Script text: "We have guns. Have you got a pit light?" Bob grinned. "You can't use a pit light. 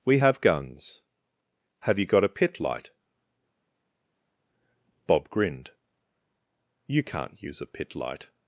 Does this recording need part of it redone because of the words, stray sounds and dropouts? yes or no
no